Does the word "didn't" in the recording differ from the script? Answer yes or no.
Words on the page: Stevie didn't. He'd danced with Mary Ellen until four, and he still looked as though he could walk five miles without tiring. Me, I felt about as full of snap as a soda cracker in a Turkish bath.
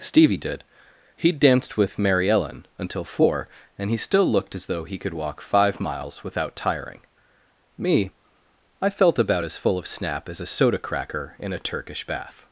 yes